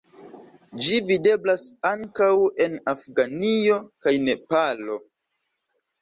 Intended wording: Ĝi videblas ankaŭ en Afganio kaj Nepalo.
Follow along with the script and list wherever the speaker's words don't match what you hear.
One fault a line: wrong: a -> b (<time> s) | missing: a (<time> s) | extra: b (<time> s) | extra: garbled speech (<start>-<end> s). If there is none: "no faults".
no faults